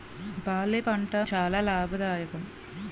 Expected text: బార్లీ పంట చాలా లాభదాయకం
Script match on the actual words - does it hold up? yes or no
yes